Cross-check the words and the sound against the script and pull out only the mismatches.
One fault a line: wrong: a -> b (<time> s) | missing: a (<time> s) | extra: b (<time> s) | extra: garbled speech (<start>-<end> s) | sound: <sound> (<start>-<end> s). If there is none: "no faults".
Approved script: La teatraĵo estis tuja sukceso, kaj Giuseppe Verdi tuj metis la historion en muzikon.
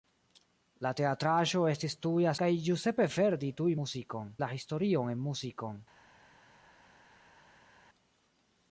missing: sukceso (2.3 s)
wrong: metis -> muzikon (3.8 s)